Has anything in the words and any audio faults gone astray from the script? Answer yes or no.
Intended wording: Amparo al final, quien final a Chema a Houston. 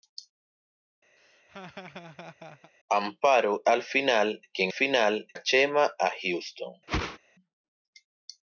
yes